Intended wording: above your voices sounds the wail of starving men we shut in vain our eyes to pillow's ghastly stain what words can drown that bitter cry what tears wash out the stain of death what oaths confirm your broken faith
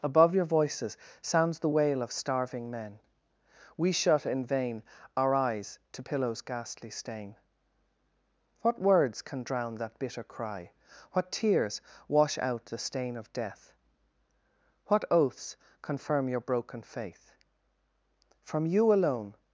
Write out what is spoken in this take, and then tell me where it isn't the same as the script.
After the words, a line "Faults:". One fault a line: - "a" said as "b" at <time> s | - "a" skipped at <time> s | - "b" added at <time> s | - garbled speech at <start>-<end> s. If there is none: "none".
above your voices sounds the wail of starving men we shut in vain our eyes to pillow's ghastly stain what words can drown that bitter cry what tears wash out the stain of death what oaths confirm your broken faith from you alone
Faults:
- "from you alone" added at 18.4 s